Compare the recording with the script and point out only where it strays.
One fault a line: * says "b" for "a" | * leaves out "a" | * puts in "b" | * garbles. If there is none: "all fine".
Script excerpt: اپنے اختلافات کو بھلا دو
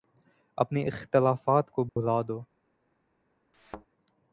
all fine